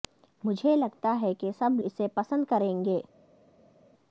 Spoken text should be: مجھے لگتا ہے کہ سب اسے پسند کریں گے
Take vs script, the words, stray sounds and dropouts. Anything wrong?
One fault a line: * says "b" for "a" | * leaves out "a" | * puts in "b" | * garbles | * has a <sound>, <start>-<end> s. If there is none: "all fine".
all fine